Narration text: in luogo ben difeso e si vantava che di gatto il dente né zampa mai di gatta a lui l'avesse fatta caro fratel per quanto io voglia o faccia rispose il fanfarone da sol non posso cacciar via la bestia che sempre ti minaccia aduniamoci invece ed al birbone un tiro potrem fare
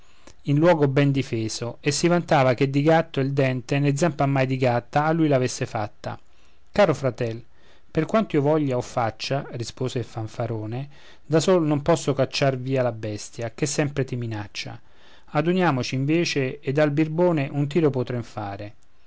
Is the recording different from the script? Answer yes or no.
no